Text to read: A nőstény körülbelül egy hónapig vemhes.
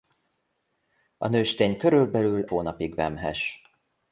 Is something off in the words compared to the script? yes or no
yes